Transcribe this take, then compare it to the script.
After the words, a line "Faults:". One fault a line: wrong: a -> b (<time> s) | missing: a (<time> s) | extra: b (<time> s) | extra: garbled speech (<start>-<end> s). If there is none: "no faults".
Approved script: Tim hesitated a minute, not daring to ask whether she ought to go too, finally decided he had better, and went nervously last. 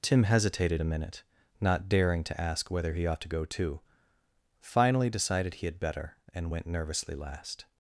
Tim hesitated a minute, not daring to ask whether he ought to go too, finally decided he had better, and went nervously last.
Faults:
wrong: she -> he (2.9 s)